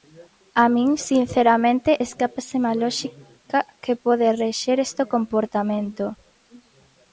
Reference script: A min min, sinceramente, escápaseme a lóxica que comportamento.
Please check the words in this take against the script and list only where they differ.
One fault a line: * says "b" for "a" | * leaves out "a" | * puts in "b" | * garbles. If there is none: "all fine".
* leaves out "min"
* puts in "pode rexer este"